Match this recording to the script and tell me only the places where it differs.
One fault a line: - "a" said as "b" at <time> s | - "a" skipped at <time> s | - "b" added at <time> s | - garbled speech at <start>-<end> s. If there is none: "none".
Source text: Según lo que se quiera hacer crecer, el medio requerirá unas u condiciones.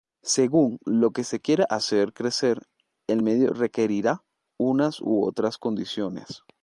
- "otras" added at 5.2 s